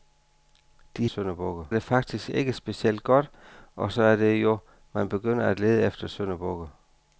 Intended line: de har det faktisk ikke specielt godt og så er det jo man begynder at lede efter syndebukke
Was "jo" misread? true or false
false